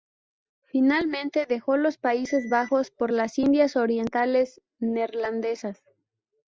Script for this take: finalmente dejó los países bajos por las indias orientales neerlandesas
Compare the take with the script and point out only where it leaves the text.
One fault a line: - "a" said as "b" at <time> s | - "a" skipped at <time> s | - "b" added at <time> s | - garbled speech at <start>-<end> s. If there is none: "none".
none